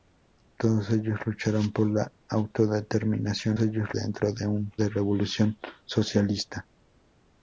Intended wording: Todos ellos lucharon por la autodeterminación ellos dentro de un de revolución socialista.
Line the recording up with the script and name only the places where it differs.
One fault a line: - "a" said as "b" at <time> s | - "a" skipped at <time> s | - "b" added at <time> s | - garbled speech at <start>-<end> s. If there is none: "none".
none